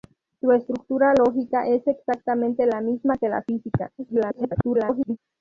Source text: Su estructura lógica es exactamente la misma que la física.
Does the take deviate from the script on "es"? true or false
false